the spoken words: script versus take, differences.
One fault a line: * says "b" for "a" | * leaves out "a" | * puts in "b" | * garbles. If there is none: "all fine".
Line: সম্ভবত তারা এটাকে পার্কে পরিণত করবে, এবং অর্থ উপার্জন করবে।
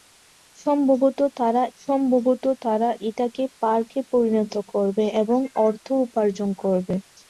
* puts in "সম্ভবত তারা"